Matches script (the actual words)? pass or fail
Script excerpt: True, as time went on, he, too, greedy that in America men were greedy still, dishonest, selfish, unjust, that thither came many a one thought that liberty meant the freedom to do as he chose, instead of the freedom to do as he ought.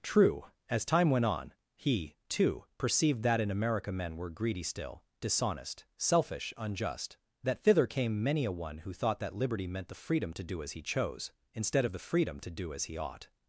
fail